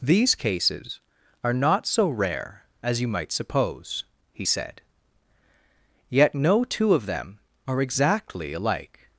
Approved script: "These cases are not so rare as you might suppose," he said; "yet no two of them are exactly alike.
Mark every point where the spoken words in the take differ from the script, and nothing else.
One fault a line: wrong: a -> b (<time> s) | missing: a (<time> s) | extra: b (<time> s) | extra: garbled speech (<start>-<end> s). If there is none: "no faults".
no faults